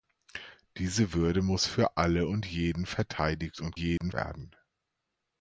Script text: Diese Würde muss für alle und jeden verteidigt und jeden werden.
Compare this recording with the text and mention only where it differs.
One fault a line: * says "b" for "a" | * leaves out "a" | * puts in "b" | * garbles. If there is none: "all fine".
all fine